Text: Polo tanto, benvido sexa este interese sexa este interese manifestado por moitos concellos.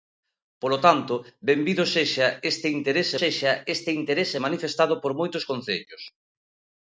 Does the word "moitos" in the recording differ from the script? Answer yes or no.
no